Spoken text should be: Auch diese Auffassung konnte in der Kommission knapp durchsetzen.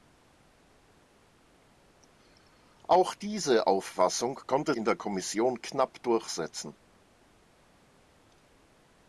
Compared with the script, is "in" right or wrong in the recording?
right